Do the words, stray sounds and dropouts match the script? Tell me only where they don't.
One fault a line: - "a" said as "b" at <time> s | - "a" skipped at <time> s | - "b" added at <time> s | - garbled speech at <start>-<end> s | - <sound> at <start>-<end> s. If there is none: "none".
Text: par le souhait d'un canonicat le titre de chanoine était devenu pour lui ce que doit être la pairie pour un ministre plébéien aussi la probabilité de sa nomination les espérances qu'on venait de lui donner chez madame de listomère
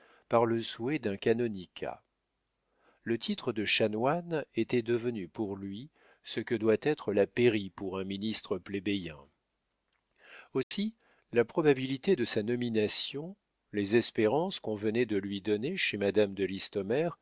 - dropout at 10.6-10.7 s